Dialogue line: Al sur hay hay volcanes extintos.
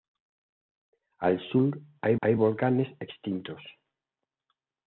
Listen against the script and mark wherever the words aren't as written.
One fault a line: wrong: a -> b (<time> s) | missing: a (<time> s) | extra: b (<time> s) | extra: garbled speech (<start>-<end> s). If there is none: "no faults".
no faults